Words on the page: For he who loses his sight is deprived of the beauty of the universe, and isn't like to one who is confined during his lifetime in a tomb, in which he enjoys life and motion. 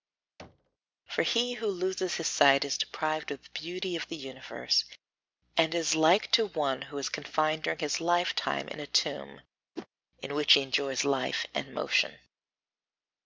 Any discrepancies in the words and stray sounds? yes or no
yes